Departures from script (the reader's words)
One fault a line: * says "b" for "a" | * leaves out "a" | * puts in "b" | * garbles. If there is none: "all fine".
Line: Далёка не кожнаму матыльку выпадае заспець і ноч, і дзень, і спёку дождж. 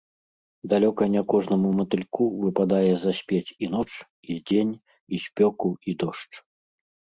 * puts in "і"